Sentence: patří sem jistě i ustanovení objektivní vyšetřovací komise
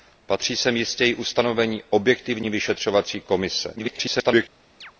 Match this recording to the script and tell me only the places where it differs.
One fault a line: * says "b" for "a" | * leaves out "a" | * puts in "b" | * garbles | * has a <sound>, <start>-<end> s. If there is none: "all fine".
* garbles
* has a chirp, 4.8-4.9 s